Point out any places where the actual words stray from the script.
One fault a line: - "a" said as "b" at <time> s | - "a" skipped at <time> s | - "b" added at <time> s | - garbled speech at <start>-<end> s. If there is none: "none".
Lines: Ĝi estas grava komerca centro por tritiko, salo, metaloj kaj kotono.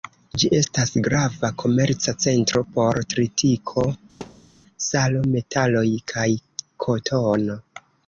none